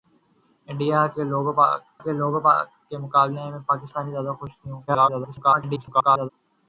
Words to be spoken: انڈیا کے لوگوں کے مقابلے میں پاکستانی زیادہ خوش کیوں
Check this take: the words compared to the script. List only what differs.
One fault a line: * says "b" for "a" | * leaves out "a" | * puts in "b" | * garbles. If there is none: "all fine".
* puts in "لوگوں کے"
* garbles